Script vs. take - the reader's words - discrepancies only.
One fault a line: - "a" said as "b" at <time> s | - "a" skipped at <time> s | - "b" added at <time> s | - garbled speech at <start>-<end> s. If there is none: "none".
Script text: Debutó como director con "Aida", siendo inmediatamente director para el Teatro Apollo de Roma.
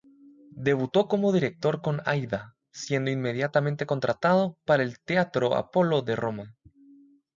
- "director" said as "contratado" at 3.9 s